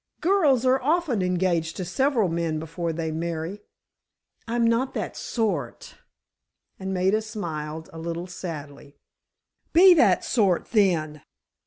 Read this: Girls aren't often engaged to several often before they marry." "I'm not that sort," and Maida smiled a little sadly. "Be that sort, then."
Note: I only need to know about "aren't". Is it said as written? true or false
false